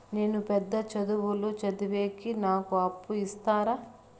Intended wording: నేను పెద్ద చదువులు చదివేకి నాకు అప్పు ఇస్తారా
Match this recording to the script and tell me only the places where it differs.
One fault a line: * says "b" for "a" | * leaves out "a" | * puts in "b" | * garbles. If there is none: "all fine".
all fine